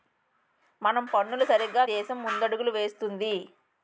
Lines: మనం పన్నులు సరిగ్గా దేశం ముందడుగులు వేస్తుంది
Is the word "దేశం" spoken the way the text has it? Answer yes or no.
yes